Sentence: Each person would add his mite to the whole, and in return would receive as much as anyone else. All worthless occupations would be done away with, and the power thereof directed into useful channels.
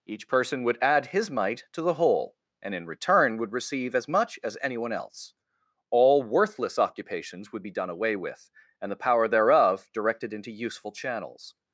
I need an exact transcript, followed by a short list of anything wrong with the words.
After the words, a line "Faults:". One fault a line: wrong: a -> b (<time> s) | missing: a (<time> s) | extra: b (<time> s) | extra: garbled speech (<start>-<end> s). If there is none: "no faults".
Each person would add his mite to the whole, and in return would receive as much as anyone else. All worthless occupations would be done away with, and the power thereof directed into useful channels.
Faults:
no faults